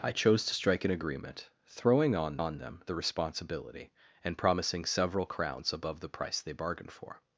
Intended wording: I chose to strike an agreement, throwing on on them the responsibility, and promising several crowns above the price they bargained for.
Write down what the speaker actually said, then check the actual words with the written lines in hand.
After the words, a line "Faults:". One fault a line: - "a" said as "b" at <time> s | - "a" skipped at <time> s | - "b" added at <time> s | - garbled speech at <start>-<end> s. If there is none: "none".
I chose to strike an agreement, throwing on on them the responsibility, and promising several crowns above the price they bargained for.
Faults:
none